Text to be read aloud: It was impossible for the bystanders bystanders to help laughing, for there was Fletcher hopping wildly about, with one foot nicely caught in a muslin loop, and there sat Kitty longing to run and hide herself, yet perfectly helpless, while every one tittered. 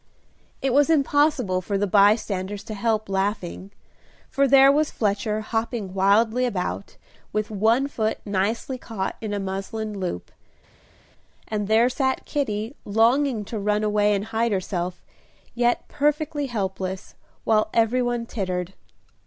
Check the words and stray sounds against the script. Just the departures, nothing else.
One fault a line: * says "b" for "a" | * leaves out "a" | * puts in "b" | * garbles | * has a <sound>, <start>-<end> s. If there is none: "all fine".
* leaves out "bystanders"
* puts in "away"